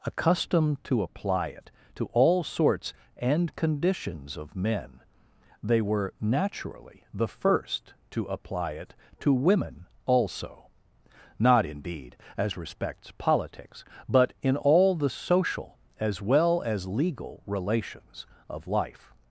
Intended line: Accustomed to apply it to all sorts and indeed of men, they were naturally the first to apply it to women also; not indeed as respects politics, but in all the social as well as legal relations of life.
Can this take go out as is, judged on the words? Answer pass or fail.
fail